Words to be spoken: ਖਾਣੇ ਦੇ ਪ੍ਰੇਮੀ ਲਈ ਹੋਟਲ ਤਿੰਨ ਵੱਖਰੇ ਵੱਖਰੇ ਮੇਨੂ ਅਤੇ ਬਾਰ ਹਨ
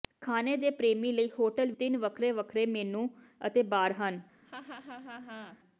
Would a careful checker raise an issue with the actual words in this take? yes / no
no